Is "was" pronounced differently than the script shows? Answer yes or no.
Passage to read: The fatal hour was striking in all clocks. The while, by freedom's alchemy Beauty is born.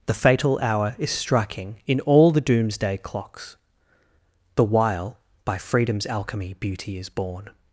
yes